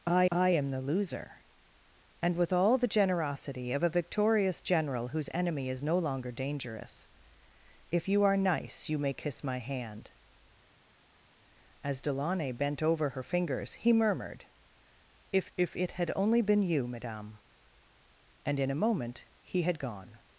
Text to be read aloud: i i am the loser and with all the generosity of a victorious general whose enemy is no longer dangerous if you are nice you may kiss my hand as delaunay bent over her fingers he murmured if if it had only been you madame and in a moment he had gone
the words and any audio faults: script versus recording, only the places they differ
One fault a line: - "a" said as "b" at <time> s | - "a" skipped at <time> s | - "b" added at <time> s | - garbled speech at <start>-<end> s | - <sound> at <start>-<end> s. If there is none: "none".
none